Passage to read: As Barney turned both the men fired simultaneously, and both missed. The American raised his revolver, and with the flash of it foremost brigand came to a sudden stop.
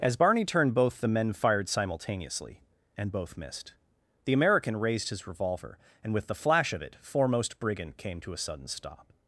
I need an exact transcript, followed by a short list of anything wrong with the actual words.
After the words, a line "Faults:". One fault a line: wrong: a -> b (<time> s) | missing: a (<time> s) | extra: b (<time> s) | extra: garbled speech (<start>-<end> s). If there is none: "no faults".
As Barney turned both the men fired simultaneously, and both missed. The American raised his revolver, and with the flash of it foremost brigand came to a sudden stop.
Faults:
no faults